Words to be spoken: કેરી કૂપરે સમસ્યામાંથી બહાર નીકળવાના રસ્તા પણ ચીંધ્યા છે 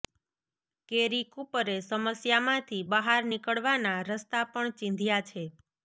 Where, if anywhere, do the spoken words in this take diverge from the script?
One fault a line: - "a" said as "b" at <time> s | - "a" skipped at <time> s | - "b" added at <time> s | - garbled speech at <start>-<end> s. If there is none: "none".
none